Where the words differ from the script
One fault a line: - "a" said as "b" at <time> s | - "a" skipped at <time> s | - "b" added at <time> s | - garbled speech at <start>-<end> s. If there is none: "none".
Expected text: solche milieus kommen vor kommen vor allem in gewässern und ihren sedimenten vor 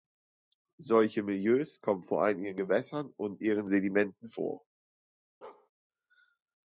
- "kommen vor" skipped at 2.2 s